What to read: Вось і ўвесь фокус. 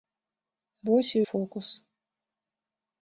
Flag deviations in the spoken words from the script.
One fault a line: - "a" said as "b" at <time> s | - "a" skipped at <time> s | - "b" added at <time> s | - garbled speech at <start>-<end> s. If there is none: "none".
- "ўвесь" skipped at 1.2 s